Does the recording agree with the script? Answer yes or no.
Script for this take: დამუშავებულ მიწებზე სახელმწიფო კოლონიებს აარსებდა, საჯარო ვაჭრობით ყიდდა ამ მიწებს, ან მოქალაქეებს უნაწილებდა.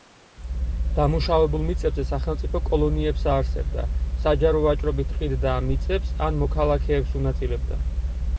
yes